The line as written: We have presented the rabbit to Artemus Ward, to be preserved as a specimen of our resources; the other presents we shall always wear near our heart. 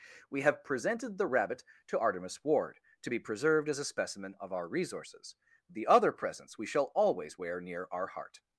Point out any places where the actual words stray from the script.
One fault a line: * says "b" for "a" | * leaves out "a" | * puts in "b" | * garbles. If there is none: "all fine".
all fine